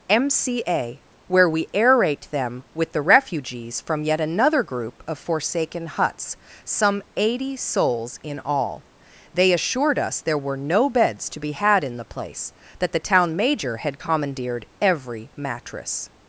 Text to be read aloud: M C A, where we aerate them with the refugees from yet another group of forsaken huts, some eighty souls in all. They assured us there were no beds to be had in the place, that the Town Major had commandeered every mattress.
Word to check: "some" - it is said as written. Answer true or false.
true